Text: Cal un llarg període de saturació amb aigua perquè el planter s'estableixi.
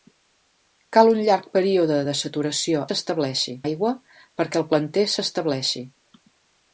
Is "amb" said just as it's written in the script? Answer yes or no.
no